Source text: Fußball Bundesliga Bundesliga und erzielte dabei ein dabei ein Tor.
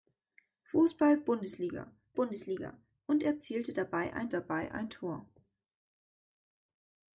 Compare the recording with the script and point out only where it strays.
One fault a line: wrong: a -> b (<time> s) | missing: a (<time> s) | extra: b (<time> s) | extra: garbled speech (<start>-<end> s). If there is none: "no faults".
no faults